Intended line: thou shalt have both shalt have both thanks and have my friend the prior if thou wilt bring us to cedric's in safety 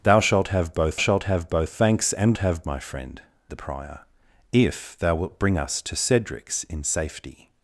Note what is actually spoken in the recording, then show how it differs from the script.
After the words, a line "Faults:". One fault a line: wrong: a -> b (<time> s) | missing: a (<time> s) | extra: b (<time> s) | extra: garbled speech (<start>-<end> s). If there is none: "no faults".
thou shalt have both shalt have both thanks and have my friend the prior if thou wilt bring us to cedric's in safety
Faults:
no faults